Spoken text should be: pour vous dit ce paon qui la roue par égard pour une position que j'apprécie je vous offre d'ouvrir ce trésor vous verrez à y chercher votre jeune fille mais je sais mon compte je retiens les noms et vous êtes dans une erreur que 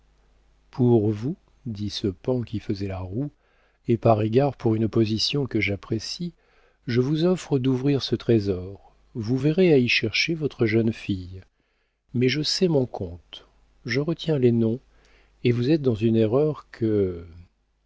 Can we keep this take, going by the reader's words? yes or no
no